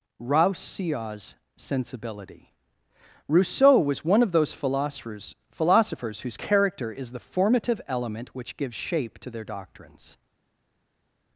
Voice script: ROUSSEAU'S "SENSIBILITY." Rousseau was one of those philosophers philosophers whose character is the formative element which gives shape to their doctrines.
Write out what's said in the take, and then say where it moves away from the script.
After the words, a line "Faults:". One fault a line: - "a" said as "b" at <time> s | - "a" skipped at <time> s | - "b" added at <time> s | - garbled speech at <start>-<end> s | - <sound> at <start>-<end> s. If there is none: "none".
ROUSSEAU'S "SENSIBILITY." Rousseau was one of those philosophers philosophers whose character is the formative element which gives shape to their doctrines.
Faults:
none